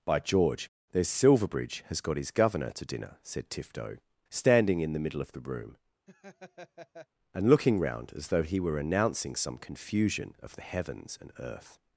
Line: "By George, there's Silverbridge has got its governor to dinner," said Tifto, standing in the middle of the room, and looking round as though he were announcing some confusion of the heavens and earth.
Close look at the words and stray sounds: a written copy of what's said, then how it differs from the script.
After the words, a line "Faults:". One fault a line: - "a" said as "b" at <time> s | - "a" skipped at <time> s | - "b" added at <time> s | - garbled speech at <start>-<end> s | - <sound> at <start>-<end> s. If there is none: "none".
"By George, there's Silverbridge has got his governor to dinner," said Tifto, standing in the middle of the room, and looking round as though he were announcing some confusion of the heavens and earth.
Faults:
- "its" said as "his" at 2.2 s
- laugh at 6.1-7.1 s